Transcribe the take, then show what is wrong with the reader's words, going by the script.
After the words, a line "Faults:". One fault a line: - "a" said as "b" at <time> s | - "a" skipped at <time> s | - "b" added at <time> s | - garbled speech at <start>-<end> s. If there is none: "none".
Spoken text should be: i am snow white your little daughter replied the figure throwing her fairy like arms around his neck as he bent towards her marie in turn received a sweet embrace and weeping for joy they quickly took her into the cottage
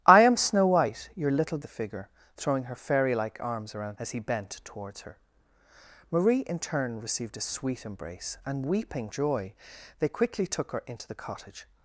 i am snow white your little the figure throwing her fairy like arms around as he bent towards her marie in turn received a sweet embrace and weeping joy they quickly took her into the cottage
Faults:
- "daughter replied" skipped at 1.6 s
- "his neck" skipped at 4.0 s
- "for" skipped at 9.1 s